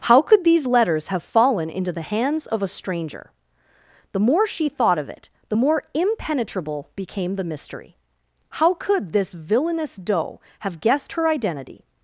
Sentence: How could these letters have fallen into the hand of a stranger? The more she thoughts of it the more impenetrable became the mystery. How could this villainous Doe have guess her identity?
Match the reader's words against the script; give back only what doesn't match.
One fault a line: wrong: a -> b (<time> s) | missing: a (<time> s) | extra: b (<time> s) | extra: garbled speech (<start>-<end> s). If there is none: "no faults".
wrong: hand -> hands (2.0 s)
wrong: thoughts -> thought (4.7 s)
wrong: guess -> guessed (10.8 s)